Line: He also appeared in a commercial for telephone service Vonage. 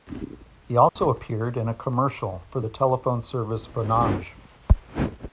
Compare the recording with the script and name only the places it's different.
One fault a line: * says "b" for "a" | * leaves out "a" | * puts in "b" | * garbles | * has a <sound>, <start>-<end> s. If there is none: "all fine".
* has a dropout, 0.9-1.0 s
* puts in "the"